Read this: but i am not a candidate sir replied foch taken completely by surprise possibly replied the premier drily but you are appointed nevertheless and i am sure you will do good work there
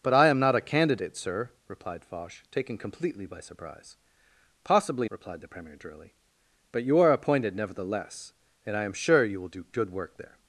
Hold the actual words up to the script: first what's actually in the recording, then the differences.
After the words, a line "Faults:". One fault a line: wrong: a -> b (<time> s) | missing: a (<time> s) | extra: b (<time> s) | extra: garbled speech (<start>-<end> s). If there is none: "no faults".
but i am not a candidate sir replied foch taken completely by surprise possibly replied the premier drily but you are appointed nevertheless and i am sure you will do good work there
Faults:
no faults